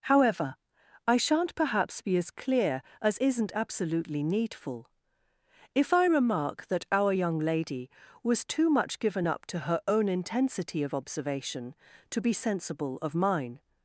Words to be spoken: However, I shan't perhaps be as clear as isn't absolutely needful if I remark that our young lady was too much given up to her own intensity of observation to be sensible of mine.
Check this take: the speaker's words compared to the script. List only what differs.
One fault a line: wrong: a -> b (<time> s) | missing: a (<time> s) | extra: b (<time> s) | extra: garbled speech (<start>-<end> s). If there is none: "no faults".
no faults